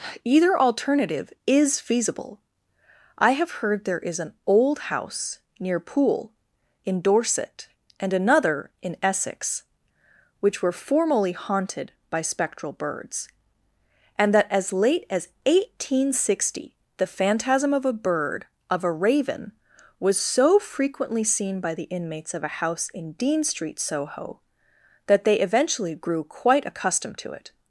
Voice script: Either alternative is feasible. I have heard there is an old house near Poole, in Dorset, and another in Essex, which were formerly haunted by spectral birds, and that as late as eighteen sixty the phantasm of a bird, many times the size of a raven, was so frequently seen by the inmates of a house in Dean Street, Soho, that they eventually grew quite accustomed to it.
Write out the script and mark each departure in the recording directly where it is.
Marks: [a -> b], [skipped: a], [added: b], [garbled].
Either alternative is feasible. I have heard there is an old house near Poole, in Dorset, and another in Essex, which were formerly haunted by spectral birds, and that as late as eighteen sixty the phantasm of a bird, [skipped: many times the size] of a raven, was so frequently seen by the inmates of a house in Dean Street, Soho, that they eventually grew quite accustomed to it.